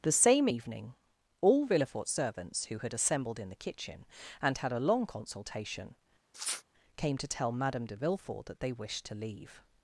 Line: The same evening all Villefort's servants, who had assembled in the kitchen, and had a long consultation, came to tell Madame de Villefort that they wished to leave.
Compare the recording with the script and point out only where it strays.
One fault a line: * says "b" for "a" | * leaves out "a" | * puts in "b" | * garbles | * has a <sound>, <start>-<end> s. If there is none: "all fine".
* has a sniff, 6.3-6.6 s